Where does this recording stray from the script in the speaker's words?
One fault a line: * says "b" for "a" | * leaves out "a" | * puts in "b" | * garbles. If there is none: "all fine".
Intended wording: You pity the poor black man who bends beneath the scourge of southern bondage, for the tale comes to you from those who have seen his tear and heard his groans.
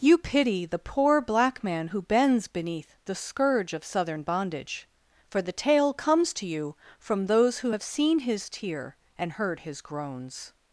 all fine